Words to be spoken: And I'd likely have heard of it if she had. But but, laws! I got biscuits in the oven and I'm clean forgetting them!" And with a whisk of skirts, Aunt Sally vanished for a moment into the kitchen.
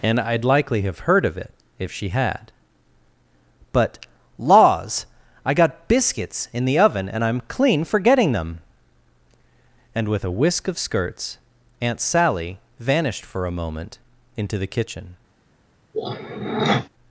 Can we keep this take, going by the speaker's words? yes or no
no